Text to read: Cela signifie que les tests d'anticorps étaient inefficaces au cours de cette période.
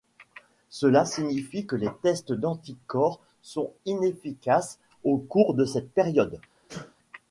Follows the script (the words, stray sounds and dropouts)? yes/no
no